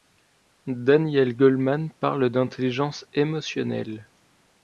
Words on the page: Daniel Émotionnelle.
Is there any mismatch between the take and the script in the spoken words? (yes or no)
yes